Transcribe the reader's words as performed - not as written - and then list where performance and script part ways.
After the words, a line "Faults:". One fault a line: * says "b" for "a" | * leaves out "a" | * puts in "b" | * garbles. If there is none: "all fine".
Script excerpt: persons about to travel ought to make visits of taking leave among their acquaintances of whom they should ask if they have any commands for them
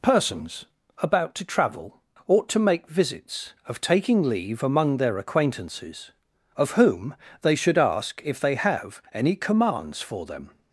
persons about to travel ought to make visits of taking leave among their acquaintances of whom they should ask if they have any commands for them
Faults:
all fine